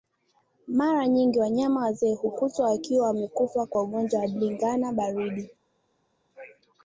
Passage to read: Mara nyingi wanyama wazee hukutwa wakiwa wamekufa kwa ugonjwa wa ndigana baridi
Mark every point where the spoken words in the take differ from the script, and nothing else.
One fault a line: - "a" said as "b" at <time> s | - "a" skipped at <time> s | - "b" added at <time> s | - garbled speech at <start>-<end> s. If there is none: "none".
none